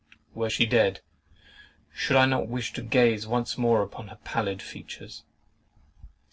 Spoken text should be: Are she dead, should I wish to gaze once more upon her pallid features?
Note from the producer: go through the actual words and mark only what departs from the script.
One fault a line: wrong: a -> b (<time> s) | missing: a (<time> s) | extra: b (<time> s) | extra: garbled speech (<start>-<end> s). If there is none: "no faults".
wrong: Are -> Were (0.3 s)
extra: not (2.3 s)